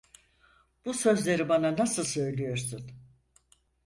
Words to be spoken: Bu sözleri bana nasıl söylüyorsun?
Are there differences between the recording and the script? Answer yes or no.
no